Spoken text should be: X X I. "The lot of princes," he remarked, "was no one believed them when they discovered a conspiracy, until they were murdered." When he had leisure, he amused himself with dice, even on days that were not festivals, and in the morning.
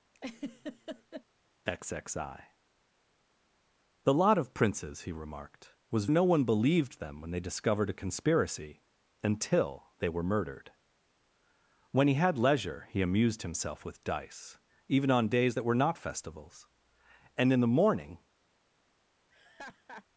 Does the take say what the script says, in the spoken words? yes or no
yes